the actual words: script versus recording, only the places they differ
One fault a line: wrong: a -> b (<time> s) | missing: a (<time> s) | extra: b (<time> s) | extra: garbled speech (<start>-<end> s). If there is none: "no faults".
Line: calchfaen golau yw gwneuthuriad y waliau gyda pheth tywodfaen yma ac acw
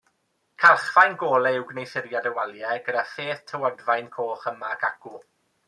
extra: coch (4.2 s)